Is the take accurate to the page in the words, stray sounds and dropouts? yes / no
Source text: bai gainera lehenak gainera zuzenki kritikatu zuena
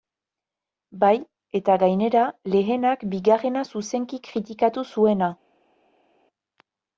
no